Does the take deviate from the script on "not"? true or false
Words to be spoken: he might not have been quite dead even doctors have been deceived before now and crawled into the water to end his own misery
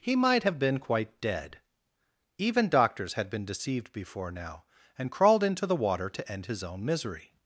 true